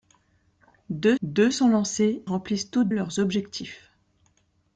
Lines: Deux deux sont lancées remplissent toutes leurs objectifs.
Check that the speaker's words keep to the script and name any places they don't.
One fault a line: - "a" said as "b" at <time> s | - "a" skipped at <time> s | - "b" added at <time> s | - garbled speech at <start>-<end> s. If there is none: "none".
none